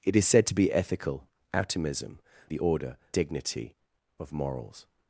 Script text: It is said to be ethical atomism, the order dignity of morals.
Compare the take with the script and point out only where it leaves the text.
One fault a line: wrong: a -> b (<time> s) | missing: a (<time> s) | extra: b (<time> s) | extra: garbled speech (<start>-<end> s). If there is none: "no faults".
no faults